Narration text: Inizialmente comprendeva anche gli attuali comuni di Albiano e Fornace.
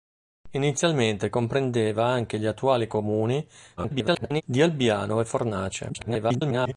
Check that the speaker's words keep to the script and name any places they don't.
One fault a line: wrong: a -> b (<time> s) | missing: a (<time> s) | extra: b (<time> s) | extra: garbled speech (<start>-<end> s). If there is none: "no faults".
extra: garbled speech (3.8-4.4 s)
extra: garbled speech (5.9-6.7 s)